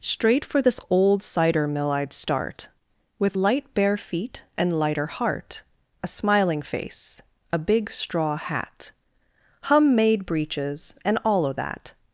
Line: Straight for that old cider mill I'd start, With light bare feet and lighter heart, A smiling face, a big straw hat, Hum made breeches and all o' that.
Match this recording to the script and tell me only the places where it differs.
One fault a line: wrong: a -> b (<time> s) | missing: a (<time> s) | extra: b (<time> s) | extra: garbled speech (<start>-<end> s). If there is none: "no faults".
wrong: that -> this (0.6 s)